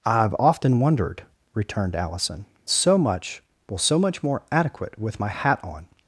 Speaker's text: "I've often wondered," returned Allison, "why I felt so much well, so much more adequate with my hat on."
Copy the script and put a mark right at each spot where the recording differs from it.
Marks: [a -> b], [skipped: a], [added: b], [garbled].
"I've often wondered," returned Allison, [skipped: "why I felt] so much well, so much more adequate with my hat on."